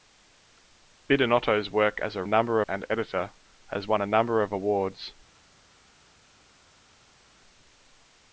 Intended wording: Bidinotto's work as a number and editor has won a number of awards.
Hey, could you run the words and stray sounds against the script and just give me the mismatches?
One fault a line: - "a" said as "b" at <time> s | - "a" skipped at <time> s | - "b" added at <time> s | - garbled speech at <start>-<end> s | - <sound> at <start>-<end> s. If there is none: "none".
none